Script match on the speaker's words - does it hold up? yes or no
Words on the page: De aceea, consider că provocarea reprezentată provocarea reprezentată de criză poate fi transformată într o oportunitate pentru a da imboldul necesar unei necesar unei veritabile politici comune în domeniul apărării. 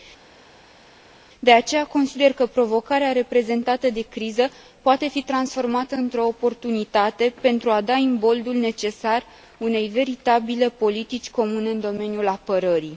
no